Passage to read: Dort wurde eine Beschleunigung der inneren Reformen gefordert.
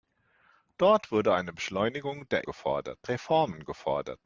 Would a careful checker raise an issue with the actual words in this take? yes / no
yes